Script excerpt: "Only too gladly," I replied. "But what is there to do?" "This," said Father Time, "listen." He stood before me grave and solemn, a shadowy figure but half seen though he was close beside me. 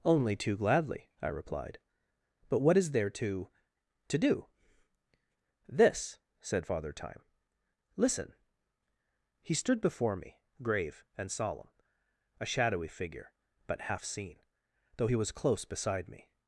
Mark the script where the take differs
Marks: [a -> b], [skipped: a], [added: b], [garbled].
"Only too gladly," I replied. "But what is there to [added: to] do?" "This," said Father Time, "listen." He stood before me grave and solemn, a shadowy figure but half seen though he was close beside me.